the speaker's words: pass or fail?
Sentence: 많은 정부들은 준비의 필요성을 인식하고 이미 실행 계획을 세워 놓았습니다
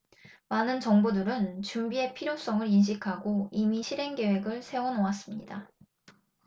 pass